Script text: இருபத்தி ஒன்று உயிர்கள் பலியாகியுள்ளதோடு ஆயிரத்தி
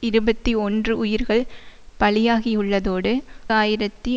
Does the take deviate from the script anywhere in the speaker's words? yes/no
no